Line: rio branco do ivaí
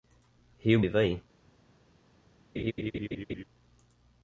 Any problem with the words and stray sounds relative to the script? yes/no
yes